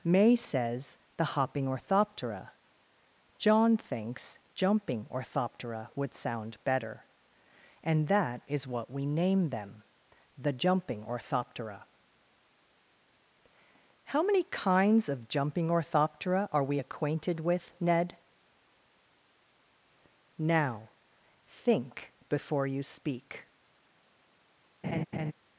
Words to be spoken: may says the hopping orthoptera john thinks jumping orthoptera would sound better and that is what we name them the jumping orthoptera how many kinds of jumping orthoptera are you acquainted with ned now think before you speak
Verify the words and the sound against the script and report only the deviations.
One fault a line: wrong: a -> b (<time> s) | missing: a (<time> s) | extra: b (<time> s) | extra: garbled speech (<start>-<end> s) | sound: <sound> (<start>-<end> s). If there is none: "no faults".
wrong: you -> we (16.6 s)
sound: laugh (24.8-25.3 s)